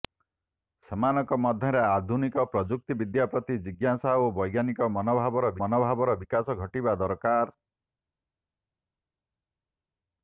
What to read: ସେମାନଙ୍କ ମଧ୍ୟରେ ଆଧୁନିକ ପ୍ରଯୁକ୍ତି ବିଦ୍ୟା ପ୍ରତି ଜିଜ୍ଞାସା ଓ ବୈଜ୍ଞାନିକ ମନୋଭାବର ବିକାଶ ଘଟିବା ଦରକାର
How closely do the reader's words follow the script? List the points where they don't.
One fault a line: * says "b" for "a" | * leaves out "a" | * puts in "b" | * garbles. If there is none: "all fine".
* puts in "ମନୋଭାବର"